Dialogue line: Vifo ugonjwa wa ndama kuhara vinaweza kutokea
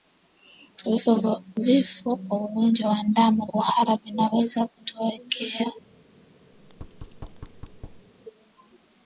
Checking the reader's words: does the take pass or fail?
fail